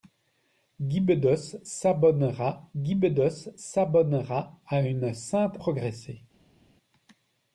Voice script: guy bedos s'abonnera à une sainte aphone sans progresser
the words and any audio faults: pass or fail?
fail